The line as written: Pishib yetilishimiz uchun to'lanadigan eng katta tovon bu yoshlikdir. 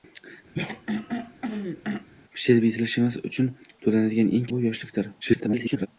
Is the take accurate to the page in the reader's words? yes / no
no